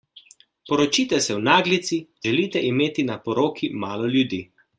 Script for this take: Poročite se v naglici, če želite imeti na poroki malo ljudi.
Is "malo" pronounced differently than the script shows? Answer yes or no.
no